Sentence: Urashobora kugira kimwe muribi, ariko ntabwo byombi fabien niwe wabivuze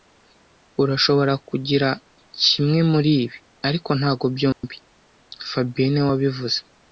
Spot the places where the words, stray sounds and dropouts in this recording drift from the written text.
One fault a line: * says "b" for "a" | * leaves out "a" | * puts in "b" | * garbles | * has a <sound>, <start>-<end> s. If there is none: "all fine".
* has a dropout, 4.5-4.6 s